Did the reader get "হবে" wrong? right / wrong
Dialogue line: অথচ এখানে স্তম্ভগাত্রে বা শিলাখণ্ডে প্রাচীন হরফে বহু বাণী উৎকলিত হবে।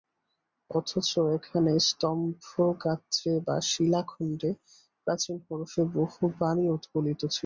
wrong